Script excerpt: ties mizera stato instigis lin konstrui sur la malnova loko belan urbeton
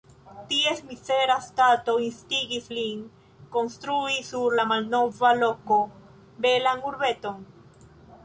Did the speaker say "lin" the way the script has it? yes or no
yes